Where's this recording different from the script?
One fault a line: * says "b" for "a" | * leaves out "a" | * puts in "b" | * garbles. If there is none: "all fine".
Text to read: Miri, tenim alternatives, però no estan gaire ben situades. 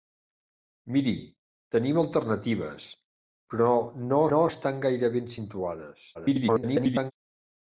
* puts in "no"
* garbles